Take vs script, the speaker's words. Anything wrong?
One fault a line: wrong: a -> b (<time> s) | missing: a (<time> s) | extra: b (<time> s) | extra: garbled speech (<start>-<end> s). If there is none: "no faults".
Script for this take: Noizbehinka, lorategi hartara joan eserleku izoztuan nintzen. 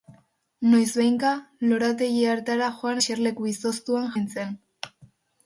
no faults